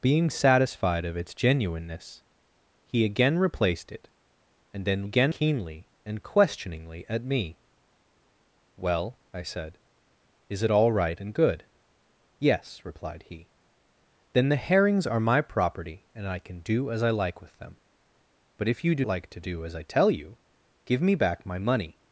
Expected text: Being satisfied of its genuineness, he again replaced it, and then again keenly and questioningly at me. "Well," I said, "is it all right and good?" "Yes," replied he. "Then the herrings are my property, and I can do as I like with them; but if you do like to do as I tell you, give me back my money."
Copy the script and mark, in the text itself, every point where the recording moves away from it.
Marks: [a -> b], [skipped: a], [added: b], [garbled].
Being satisfied of its genuineness, he again replaced it, and then again keenly and questioningly at me. "Well," I said, "is it all right and good?" "Yes," replied he. "Then the herrings are my property, and I can do as I like with them; but if you do like to do as I tell you, give me back my money."